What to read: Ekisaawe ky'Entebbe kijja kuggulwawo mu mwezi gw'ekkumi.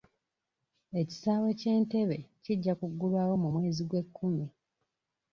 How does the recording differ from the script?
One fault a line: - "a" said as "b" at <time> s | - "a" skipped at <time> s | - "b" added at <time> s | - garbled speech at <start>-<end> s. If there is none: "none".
none